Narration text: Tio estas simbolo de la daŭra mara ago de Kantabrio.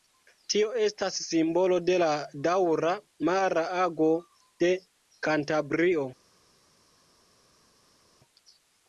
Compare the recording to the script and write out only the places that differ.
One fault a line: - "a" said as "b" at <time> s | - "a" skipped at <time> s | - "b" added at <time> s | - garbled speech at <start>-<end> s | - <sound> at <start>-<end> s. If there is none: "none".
none